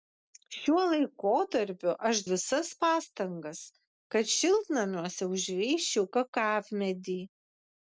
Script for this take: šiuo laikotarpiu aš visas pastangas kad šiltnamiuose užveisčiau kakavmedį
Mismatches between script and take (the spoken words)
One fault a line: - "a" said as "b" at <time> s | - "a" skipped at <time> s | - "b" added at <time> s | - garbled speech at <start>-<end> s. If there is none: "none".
none